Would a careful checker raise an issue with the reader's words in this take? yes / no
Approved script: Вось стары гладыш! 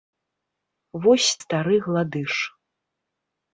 no